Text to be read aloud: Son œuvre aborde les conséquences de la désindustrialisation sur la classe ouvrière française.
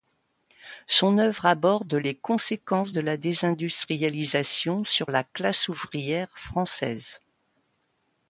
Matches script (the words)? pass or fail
pass